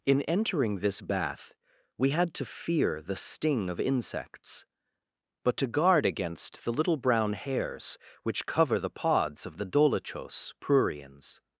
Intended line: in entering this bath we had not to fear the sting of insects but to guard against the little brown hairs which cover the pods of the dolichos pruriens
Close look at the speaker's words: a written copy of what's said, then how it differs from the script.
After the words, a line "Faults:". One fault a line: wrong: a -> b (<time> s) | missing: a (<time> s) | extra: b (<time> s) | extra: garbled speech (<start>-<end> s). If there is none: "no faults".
in entering this bath we had to fear the sting of insects but to guard against the little brown hairs which cover the pods of the dolichos pruriens
Faults:
missing: not (2.3 s)